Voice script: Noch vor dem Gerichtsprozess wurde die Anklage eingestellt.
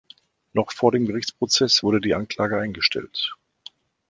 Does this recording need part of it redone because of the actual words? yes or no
no